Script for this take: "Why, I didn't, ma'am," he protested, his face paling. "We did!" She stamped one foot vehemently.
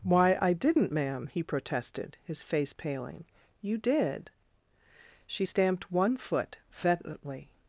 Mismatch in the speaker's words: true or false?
true